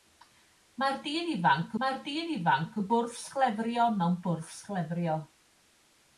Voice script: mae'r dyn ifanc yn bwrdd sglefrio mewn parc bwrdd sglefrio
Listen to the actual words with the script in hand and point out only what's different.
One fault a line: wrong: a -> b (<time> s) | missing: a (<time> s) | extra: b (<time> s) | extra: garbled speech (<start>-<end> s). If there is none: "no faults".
extra: mae'r dyn ifanc (1.8 s)
missing: parc (4.2 s)